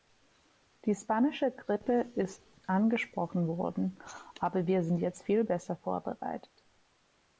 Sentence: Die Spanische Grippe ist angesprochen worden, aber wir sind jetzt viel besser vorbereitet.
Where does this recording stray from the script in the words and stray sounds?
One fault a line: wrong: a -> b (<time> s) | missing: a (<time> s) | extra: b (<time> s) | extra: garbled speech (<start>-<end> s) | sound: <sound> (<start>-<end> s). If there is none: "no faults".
no faults